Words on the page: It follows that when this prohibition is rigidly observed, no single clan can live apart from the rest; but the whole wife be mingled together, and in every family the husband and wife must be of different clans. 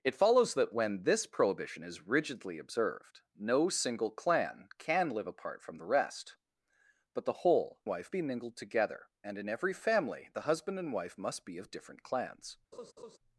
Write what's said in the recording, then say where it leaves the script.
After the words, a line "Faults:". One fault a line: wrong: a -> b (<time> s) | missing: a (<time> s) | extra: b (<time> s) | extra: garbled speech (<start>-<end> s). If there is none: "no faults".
It follows that when this prohibition is rigidly observed, no single clan can live apart from the rest; but the whole wife be mingled together, and in every family the husband and wife must be of different clans.
Faults:
no faults